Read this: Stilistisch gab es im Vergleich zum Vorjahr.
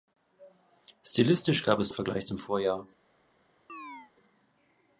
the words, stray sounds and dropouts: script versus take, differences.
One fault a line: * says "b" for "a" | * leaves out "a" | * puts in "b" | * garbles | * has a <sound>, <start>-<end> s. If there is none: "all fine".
* has a chirp, 3.7-4.1 s